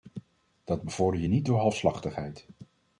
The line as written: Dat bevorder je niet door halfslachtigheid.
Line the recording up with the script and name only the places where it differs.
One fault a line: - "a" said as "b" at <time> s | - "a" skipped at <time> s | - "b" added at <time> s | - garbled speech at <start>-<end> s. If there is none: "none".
none